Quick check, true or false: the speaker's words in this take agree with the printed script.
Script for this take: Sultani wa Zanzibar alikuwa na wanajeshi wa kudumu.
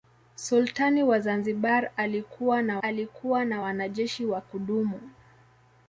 false